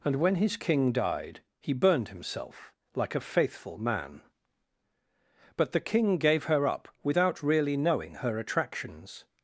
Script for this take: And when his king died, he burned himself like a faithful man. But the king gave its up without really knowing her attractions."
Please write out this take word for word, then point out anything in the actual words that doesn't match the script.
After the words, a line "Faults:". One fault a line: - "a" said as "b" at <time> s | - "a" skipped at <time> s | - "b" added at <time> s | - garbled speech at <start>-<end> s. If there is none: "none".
And when his king died, he burned himself like a faithful man. But the king gave her up without really knowing her attractions."
Faults:
- "its" said as "her" at 6.5 s